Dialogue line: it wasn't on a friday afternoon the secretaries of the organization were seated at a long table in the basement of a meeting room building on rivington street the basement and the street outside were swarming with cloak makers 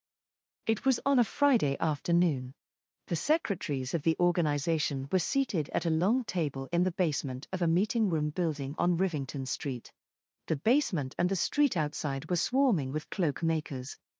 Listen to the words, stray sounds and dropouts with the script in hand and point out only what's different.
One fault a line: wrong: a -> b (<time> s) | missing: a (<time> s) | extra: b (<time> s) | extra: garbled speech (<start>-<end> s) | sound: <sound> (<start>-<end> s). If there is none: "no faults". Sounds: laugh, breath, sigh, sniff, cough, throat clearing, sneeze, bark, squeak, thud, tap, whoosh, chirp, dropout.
wrong: wasn't -> was (0.9 s)